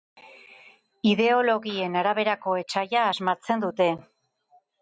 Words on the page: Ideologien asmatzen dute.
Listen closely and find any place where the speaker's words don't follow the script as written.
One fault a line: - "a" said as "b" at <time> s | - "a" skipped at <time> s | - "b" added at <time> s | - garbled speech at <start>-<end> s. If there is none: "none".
- "araberako etsaia" added at 2.0 s